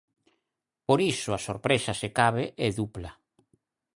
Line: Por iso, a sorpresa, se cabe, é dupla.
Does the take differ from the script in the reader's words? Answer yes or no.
no